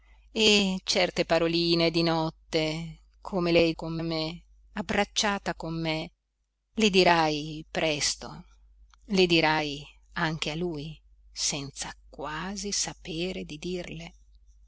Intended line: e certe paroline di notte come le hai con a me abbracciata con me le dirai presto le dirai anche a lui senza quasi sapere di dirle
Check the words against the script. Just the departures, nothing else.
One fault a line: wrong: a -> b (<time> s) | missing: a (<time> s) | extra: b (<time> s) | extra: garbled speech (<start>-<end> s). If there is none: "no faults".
no faults